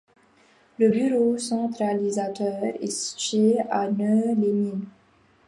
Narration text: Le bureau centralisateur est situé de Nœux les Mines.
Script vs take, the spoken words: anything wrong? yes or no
yes